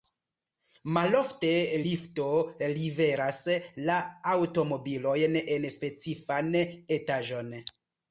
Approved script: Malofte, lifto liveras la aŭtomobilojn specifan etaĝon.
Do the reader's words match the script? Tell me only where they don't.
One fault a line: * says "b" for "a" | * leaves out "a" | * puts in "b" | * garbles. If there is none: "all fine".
* puts in "en"